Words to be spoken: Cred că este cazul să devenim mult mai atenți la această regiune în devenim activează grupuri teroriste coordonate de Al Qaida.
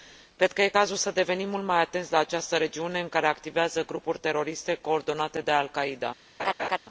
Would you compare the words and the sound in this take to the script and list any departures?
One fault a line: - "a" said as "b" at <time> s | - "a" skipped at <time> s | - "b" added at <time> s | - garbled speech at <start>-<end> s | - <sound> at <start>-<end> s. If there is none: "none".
- "devenim" said as "care" at 3.1 s
- laugh at 6.4-6.8 s